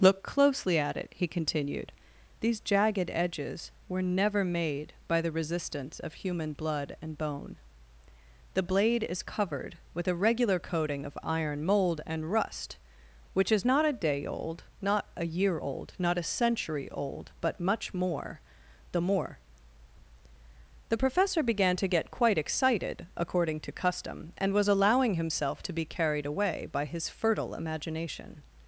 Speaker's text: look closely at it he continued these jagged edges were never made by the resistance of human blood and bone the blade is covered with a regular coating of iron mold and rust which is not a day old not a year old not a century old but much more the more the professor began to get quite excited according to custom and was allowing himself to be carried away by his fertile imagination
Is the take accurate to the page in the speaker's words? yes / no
yes